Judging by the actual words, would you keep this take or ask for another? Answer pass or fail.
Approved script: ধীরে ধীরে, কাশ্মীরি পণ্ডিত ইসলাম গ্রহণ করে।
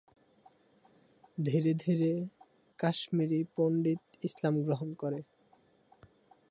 pass